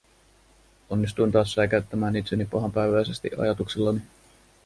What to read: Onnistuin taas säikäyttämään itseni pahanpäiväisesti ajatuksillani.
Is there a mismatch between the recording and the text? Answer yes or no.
no